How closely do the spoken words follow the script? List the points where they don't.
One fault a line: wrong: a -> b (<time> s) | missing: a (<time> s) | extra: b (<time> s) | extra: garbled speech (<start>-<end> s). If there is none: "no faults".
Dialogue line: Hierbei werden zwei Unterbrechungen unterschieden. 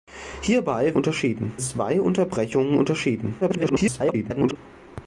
wrong: werden -> unterschieden (0.9 s)
extra: garbled speech (3.4-4.6 s)